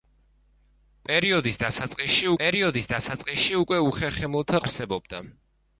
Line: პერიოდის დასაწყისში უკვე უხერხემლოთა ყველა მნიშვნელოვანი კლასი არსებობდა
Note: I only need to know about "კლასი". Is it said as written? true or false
false